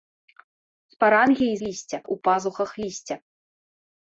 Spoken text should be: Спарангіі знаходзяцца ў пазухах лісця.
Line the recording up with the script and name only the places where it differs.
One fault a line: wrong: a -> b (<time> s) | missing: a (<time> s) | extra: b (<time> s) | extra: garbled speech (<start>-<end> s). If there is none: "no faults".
wrong: знаходзяцца -> лісця (1.7 s)